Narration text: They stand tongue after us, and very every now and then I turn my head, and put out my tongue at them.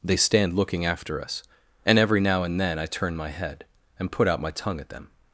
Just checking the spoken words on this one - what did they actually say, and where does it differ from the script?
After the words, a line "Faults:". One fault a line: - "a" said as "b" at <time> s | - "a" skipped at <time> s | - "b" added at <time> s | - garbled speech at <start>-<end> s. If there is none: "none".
They stand looking after us, and every now and then I turn my head, and put out my tongue at them.
Faults:
- "tongue" said as "looking" at 0.6 s
- "very" skipped at 2.0 s